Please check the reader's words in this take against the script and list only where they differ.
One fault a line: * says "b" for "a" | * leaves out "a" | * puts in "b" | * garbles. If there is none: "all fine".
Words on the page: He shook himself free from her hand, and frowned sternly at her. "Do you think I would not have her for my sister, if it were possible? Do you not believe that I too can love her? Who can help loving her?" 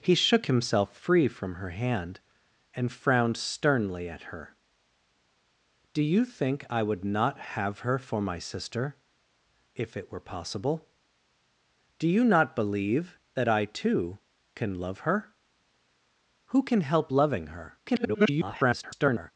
* garbles